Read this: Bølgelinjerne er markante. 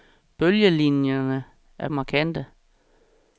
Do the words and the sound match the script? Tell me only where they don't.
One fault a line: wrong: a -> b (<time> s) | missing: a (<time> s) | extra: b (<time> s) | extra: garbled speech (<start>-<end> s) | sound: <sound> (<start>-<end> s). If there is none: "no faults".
no faults